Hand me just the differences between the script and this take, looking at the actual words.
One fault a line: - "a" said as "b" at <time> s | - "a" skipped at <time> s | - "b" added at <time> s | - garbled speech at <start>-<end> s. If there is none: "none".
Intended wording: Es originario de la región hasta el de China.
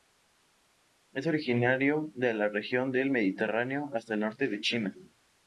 - "del Mediterráneo" added at 2.9 s
- "norte" added at 4.2 s